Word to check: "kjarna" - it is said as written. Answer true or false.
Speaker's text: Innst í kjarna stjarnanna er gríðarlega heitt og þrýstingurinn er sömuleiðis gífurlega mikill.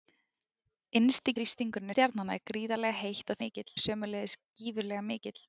false